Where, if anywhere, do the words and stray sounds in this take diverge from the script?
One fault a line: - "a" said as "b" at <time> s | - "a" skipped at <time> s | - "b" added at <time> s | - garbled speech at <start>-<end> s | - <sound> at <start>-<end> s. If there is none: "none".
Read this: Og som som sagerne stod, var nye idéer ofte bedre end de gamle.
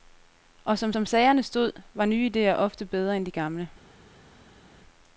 none